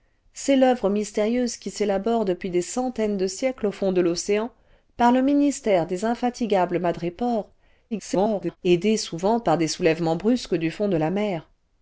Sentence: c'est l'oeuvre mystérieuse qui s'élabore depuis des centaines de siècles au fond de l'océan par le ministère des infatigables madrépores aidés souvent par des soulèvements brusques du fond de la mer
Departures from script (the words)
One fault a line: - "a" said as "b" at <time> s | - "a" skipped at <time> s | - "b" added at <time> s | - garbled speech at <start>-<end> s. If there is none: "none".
- garbled speech at 7.9-8.6 s